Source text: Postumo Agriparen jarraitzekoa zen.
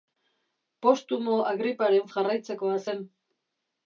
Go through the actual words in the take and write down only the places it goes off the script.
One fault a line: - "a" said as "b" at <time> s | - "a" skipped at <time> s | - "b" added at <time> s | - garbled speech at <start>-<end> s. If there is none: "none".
none